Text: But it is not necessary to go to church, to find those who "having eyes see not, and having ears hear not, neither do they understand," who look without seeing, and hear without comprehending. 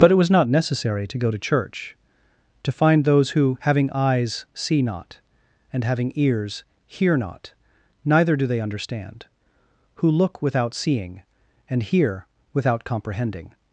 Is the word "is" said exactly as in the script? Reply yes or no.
no